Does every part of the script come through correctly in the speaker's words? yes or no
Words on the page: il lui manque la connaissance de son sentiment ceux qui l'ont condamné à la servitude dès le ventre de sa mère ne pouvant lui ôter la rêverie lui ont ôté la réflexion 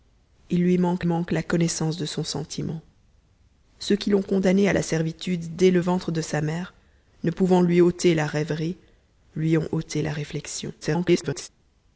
no